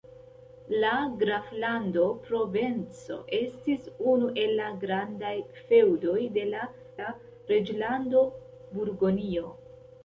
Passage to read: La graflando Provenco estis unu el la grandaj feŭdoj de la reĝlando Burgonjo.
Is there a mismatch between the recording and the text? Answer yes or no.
yes